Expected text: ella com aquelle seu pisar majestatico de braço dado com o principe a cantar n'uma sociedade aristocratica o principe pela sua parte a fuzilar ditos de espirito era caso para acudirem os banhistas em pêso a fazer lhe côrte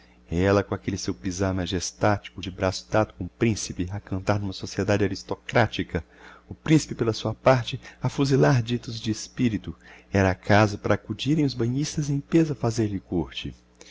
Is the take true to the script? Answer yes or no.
yes